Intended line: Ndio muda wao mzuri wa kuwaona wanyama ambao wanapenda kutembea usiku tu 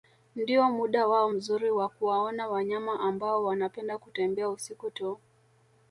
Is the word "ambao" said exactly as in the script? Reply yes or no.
yes